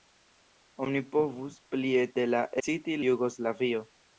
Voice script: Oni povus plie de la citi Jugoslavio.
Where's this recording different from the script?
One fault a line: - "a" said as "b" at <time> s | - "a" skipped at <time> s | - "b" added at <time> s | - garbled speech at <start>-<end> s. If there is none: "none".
none